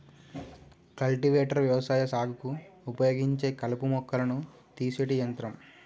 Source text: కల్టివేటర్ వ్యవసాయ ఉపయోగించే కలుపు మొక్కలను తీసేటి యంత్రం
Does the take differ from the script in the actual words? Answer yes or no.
yes